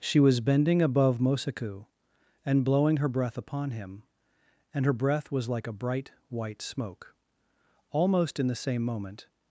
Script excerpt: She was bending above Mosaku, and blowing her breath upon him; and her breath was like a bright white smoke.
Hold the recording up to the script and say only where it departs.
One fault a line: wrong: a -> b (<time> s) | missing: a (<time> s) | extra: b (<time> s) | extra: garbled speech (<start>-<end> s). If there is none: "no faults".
extra: Almost in the same moment (7.9 s)